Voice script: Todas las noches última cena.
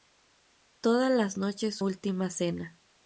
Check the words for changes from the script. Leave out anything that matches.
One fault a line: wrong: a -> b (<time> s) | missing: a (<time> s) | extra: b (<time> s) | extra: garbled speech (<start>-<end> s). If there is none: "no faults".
no faults